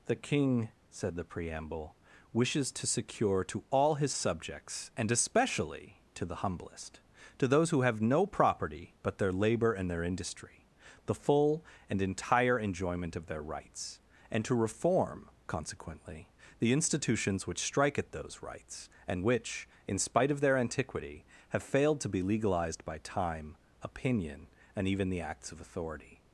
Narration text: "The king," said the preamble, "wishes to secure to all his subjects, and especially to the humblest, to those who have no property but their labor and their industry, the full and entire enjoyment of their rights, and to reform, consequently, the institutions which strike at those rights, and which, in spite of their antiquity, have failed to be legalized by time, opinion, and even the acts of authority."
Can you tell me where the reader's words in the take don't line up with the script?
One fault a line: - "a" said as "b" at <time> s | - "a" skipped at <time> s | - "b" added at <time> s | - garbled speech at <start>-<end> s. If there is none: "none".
none